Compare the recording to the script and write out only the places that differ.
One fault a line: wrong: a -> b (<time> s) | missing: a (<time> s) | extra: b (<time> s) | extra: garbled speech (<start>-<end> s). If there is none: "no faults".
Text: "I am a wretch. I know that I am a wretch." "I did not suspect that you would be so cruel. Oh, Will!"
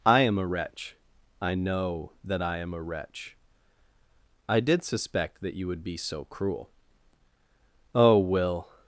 missing: not (4.8 s)